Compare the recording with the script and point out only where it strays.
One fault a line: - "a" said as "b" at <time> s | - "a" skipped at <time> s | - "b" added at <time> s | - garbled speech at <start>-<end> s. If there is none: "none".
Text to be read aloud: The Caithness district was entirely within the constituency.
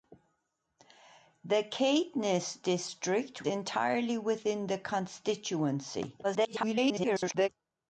- "was" skipped at 3.4 s
- garbled speech at 6.2-7.5 s